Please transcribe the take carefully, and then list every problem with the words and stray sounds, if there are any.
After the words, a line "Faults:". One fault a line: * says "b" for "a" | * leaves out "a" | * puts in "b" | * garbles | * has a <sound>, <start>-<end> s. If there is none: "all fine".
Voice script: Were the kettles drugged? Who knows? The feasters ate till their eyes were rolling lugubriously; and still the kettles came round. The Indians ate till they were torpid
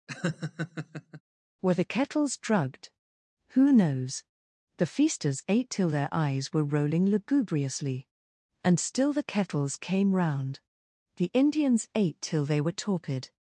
Were the kettles drugged? Who knows? The feasters ate till their eyes were rolling lugubriously; and still the kettles came round. The Indians ate till they were torpid
Faults:
* has a laugh, 0.1-1.2 s